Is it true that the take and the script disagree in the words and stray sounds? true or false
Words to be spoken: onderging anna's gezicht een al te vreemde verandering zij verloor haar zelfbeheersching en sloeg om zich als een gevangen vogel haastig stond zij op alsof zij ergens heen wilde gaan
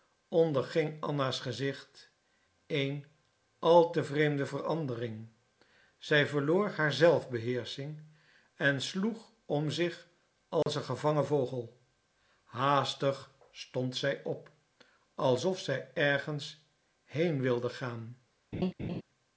true